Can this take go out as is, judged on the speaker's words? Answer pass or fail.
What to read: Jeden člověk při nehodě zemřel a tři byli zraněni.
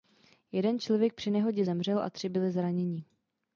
pass